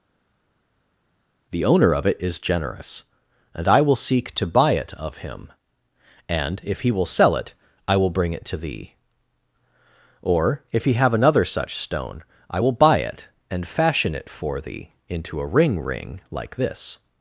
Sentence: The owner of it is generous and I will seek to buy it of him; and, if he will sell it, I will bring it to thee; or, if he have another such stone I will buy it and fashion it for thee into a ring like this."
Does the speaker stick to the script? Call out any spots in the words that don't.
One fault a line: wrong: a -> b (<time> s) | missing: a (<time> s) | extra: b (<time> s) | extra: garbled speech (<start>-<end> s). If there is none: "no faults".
extra: ring (15.8 s)